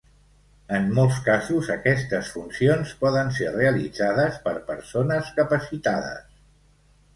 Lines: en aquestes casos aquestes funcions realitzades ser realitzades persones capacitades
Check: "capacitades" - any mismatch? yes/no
no